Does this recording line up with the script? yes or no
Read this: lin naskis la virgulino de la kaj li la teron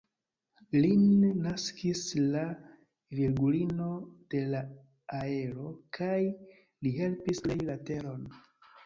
no